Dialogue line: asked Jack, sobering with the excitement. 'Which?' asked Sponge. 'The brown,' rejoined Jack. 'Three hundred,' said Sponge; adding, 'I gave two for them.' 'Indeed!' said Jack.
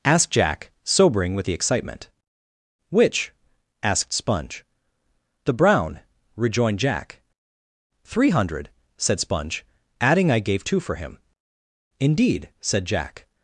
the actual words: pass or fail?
fail